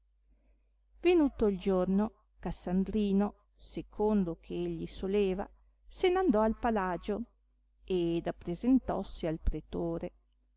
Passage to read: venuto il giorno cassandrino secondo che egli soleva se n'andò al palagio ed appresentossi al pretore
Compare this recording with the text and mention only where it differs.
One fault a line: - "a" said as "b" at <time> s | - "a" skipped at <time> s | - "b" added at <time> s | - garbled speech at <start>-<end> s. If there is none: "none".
none